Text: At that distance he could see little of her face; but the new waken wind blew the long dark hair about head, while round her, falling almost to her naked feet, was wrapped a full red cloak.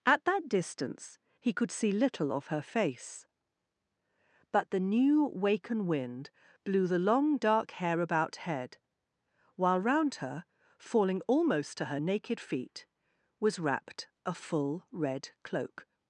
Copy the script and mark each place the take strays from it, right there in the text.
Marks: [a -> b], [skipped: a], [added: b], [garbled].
At that distance he could see little of her face; but the new waken wind blew the long dark hair about head, while round her, falling almost to her naked feet, was wrapped a full red cloak.